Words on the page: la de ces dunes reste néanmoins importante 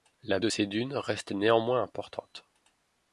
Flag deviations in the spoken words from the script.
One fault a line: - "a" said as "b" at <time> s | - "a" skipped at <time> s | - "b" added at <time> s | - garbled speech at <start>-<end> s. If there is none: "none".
none